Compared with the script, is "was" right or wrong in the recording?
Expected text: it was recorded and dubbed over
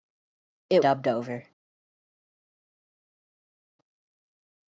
wrong